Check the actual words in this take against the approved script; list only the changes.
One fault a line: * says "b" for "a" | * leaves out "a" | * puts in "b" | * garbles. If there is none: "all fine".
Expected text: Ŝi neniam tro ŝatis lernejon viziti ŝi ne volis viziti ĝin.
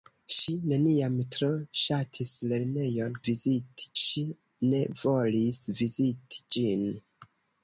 all fine